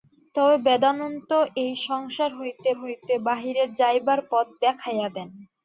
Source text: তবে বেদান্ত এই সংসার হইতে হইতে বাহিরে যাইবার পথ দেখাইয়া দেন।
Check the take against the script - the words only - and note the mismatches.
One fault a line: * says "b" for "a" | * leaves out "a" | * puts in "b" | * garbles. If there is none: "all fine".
all fine